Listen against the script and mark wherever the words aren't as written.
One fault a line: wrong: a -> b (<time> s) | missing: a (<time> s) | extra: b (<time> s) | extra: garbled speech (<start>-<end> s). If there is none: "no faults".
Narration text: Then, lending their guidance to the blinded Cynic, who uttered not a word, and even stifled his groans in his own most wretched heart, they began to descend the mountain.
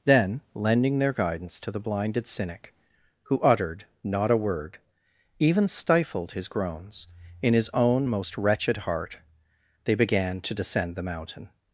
missing: and (4.8 s)